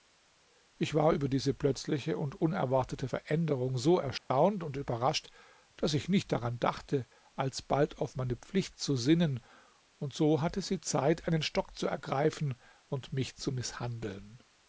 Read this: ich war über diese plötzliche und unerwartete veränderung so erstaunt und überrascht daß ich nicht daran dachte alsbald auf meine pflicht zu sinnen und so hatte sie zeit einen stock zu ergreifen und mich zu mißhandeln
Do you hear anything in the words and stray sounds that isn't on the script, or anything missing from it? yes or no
yes